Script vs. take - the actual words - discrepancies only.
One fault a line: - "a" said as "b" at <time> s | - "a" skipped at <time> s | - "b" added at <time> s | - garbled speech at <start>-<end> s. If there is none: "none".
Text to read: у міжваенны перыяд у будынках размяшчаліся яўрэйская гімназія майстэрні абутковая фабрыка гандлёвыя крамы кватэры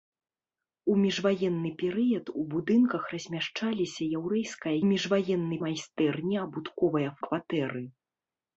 - "гімназія" said as "міжваенны" at 4.9 s
- "фабрыка гандлёвыя крамы" skipped at 7.1 s